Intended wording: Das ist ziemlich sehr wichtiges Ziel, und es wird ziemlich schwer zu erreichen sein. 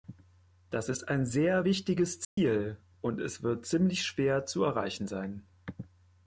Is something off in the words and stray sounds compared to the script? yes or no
yes